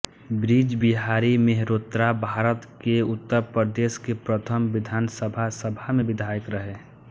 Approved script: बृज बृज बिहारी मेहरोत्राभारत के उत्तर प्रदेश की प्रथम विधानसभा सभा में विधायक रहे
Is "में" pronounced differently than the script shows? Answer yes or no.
no